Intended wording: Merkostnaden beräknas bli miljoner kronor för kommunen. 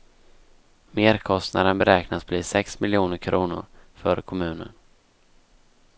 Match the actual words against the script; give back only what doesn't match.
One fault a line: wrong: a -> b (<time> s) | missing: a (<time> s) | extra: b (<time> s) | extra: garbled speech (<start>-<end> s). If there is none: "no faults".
extra: sex (2.4 s)